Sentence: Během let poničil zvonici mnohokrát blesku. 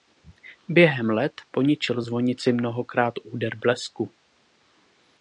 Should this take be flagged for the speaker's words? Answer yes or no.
yes